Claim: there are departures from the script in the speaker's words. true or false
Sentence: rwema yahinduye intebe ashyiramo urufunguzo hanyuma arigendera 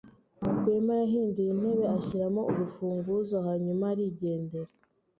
false